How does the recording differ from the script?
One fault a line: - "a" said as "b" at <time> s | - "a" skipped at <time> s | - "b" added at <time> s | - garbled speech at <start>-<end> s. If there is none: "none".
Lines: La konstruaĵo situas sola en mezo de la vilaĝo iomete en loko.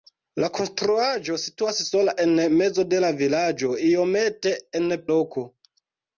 none